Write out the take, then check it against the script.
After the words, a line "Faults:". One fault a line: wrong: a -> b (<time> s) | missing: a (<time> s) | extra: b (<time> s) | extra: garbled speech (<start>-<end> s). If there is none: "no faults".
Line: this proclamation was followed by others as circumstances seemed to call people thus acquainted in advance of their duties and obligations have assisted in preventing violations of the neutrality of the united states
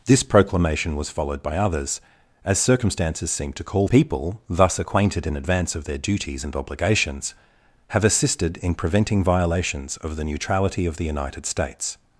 this proclamation was followed by others as circumstances seemed to call people thus acquainted in advance of their duties and obligations have assisted in preventing violations of the neutrality of the united states
Faults:
no faults